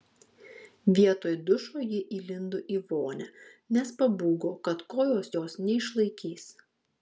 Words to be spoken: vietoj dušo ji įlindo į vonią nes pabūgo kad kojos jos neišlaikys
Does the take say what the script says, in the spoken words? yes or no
yes